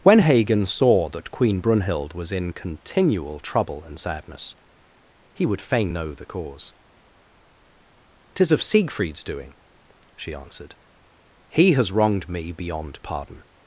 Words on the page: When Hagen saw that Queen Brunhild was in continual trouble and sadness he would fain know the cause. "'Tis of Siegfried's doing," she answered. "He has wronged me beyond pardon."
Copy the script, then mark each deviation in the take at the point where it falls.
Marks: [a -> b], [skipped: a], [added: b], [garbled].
When Hagen saw that Queen Brunhild was in continual trouble and sadness he would fain know the cause. "'Tis of Siegfried's doing," she answered. "He has wronged me beyond pardon."